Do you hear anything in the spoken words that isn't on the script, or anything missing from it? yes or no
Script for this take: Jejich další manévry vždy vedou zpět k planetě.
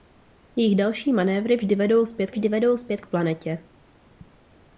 yes